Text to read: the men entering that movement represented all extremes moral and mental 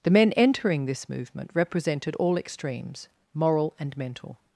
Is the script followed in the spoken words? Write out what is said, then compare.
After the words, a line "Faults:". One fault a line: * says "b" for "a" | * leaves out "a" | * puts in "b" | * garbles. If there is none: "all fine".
the men entering this movement represented all extremes moral and mental
Faults:
* says "this" for "that"